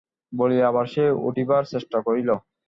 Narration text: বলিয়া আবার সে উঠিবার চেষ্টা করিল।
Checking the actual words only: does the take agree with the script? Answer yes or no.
yes